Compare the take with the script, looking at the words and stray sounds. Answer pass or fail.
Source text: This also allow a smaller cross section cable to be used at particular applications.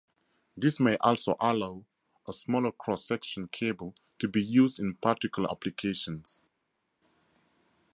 fail